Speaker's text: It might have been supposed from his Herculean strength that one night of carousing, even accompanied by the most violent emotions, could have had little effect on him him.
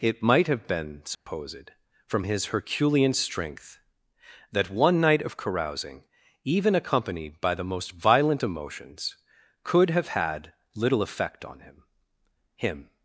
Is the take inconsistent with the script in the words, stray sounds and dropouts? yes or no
yes